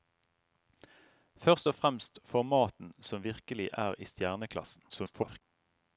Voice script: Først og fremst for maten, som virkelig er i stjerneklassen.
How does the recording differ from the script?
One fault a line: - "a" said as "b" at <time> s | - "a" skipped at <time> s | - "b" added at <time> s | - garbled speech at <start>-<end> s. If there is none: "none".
- garbled speech at 4.9-5.4 s